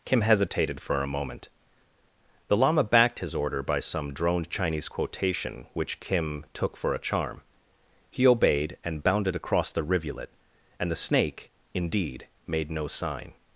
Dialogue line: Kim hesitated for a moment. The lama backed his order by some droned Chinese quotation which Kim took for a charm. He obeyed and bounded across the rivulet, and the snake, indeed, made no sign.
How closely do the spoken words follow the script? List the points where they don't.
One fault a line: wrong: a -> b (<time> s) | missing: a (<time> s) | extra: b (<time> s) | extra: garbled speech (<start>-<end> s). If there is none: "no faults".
no faults